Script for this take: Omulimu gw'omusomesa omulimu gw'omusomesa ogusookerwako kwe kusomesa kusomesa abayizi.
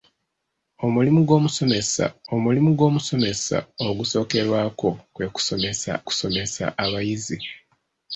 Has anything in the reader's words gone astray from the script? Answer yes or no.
no